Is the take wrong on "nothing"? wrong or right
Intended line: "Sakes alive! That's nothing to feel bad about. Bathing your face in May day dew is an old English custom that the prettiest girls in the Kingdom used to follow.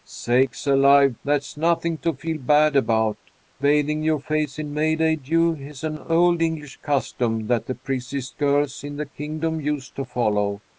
right